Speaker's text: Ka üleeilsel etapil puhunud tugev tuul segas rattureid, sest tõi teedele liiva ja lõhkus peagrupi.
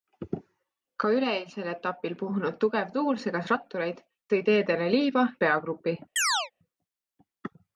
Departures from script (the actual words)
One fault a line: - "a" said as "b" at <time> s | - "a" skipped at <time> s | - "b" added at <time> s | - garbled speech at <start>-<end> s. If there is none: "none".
- "sest" skipped at 4.0 s
- "ja lõhkus" skipped at 5.3 s